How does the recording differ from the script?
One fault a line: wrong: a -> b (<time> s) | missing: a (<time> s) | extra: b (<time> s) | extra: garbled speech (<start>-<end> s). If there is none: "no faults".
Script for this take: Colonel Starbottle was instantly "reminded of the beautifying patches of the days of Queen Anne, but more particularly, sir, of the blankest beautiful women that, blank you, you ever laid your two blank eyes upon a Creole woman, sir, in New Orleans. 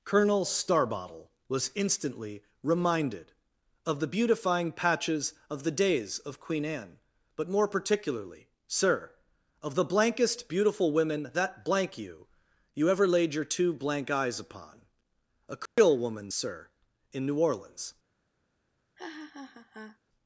no faults